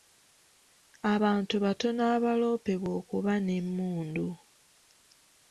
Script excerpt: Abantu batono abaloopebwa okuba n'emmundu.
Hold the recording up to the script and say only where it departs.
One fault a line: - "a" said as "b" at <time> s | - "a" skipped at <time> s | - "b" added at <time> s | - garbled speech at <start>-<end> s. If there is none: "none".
none